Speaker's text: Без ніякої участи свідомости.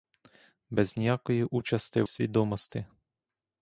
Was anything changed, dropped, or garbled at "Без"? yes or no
no